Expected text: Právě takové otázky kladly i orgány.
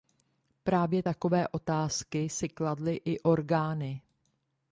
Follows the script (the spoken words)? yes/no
no